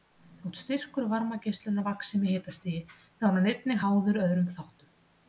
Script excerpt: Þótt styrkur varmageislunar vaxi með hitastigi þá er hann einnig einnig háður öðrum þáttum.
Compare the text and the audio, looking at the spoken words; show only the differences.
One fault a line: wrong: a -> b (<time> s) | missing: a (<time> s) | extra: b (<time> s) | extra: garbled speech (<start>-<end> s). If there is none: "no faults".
missing: einnig (3.8 s)